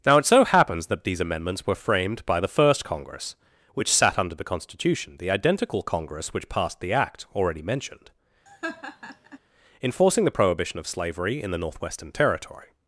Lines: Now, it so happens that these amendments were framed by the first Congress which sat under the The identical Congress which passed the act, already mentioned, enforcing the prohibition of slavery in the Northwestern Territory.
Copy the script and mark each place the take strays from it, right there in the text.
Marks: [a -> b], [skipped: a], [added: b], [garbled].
Now, it so happens that these amendments were framed by the first Congress which sat under the [added: Constitution] The identical Congress which passed the act, already mentioned, enforcing the prohibition of slavery in the Northwestern Territory.